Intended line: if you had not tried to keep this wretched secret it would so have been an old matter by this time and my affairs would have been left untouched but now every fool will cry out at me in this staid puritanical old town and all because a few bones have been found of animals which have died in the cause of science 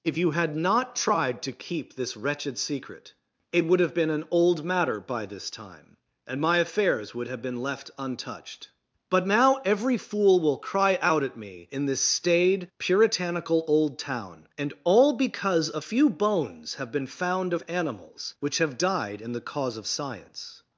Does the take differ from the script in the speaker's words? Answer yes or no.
yes